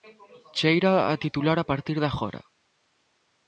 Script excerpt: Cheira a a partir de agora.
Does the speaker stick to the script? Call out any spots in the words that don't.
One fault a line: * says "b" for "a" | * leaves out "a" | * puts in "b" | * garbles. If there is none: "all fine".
* puts in "titular"